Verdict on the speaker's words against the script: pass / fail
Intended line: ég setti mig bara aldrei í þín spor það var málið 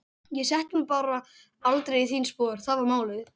pass